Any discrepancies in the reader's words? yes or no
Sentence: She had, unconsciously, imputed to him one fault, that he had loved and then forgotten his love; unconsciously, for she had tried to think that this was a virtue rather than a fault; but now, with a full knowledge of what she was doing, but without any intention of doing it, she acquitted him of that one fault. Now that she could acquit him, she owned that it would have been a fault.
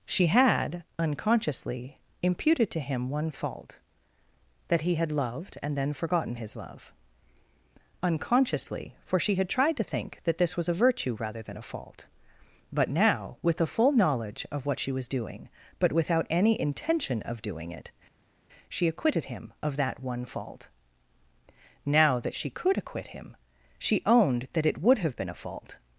no